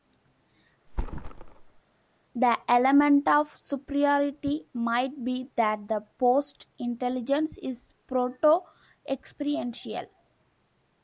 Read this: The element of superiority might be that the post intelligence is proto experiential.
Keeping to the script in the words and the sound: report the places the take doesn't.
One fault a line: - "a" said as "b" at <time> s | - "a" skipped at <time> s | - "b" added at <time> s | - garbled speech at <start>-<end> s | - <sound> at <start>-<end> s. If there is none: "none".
- thud at 0.9-1.8 s